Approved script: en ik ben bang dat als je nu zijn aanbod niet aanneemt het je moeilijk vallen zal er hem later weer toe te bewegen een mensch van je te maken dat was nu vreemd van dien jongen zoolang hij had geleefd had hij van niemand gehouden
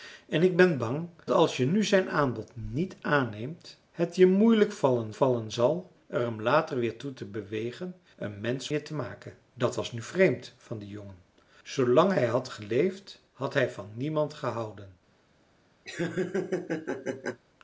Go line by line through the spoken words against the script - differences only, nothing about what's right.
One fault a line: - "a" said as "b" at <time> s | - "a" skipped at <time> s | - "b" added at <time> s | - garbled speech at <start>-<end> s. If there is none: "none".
- "dat" skipped at 1.1 s
- "vallen" added at 5.1 s
- "van" skipped at 8.7 s